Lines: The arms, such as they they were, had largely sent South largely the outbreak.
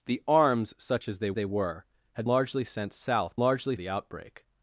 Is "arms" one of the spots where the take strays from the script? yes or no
no